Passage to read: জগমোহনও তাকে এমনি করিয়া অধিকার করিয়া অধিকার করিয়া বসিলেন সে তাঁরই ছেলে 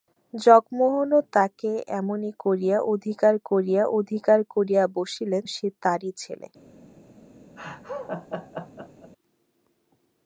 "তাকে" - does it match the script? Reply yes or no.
yes